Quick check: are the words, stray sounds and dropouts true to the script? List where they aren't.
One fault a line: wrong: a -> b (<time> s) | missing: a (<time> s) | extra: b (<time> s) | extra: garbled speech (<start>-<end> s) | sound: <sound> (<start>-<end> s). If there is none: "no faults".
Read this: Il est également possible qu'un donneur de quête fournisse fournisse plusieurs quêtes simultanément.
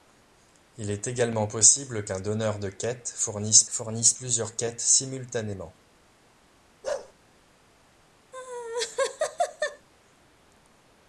sound: bark (6.8-7.1 s)
sound: laugh (8.3-9.9 s)